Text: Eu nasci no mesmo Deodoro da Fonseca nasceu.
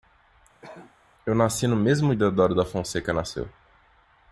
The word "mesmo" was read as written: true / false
true